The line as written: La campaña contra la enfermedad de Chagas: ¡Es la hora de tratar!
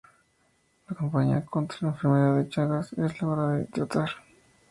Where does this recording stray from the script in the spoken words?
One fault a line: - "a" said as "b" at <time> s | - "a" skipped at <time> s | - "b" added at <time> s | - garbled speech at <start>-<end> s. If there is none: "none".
none